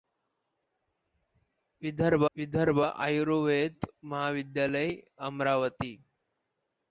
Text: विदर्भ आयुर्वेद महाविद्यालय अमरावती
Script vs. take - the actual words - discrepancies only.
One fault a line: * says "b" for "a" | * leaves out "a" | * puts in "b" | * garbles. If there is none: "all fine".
* puts in "विदर्भ"